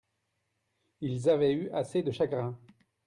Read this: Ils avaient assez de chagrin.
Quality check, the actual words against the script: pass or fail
fail